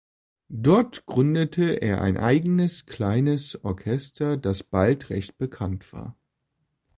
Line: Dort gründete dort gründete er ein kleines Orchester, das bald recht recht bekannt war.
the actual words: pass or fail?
fail